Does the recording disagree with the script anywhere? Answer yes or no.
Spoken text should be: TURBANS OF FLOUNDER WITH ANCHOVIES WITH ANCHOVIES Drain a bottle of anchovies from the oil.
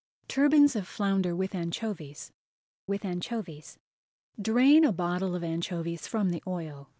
no